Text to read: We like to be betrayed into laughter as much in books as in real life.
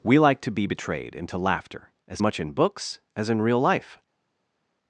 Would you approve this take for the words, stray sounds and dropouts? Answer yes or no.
yes